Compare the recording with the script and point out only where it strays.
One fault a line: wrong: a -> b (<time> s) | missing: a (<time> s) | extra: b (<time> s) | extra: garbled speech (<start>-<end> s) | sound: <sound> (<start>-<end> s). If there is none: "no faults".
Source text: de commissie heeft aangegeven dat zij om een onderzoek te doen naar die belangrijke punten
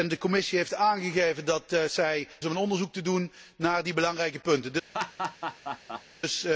sound: laugh (4.9-6.0 s)